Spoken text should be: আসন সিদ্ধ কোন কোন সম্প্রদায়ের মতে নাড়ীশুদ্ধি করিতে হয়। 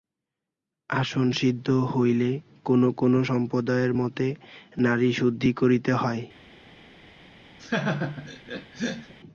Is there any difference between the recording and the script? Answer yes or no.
yes